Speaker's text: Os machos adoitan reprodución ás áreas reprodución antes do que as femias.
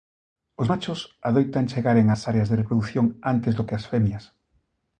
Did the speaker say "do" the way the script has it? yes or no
yes